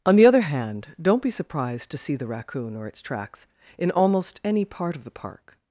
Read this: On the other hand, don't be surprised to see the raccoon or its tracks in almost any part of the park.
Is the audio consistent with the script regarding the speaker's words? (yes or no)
yes